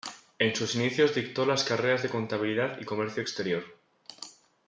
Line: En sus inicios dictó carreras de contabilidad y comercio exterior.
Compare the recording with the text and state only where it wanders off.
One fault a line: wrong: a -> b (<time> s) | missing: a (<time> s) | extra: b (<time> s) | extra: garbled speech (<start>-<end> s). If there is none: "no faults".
extra: las (1.4 s)